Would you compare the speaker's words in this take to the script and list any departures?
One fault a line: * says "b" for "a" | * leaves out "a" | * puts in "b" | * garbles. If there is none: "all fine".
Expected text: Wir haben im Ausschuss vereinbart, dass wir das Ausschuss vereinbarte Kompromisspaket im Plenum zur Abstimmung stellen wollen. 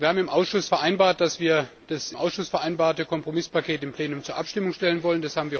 all fine